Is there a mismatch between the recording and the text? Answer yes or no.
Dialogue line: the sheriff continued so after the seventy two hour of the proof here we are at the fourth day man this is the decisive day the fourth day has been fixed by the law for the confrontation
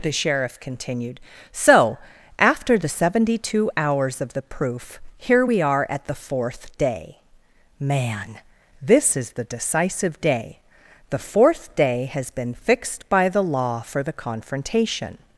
yes